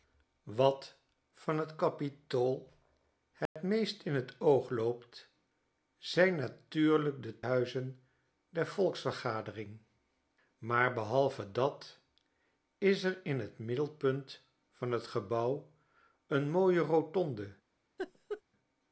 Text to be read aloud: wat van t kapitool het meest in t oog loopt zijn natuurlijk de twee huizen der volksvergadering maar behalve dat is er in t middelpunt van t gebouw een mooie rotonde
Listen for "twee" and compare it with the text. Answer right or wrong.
wrong